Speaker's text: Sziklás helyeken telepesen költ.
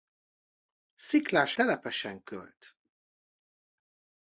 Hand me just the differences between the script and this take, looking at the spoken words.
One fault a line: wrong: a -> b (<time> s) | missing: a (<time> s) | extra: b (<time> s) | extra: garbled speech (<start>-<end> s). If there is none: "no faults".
missing: helyeken (1.6 s)